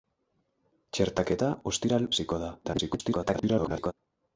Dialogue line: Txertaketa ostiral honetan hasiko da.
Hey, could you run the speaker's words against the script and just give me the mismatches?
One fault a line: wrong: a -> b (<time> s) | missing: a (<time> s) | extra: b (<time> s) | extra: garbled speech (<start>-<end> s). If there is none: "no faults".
missing: honetan (2.1 s)
extra: garbled speech (2.6-3.9 s)